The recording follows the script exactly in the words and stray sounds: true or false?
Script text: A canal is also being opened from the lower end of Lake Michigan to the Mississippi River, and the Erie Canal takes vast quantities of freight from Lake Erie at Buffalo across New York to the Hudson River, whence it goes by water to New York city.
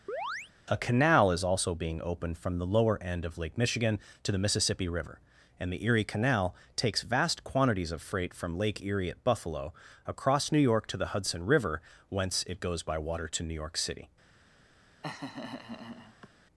false